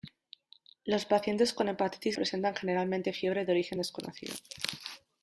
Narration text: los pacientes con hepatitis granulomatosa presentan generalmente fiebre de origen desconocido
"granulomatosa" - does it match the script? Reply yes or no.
no